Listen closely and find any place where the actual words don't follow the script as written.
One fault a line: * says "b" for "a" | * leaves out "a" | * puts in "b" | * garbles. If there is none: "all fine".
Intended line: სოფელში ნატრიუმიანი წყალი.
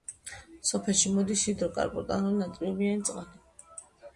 * puts in "მოდის ჰიდროკარბონატული"